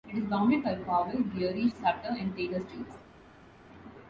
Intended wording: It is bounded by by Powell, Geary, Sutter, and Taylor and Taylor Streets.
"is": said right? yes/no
yes